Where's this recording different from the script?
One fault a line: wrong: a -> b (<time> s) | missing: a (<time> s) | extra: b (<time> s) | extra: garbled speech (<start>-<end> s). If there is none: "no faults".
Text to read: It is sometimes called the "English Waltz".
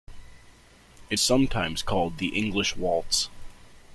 missing: is (1.2 s)